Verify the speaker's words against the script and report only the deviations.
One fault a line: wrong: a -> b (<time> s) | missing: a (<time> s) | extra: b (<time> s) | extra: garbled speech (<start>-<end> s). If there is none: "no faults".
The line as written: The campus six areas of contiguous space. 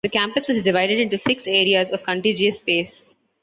extra: was divided into (0.5 s)